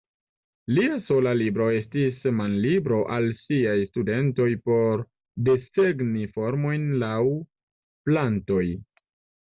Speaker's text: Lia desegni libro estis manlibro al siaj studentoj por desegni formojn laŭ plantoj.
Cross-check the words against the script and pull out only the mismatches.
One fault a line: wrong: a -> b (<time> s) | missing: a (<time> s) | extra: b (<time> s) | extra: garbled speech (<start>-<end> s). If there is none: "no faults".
wrong: desegni -> sola (1.1 s)